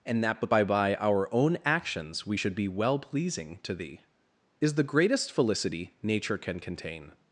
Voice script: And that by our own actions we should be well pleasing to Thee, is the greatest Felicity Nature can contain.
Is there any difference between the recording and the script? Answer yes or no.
yes